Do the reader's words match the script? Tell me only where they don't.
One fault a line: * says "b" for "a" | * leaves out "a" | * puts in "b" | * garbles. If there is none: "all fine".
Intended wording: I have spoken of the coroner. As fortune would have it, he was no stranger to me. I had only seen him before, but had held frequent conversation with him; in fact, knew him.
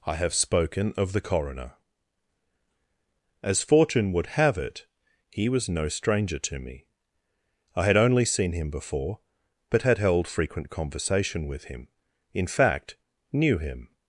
all fine